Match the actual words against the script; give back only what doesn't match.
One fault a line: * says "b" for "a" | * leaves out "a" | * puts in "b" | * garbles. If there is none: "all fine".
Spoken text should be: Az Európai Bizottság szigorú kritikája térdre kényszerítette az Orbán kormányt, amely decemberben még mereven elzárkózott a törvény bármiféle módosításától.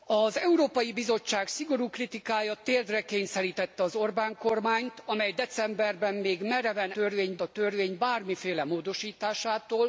* says "törvény" for "elzárkózott"